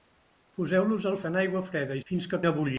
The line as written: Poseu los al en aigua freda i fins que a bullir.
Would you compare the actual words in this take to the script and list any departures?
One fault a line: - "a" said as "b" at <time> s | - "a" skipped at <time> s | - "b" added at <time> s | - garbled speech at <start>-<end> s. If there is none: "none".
none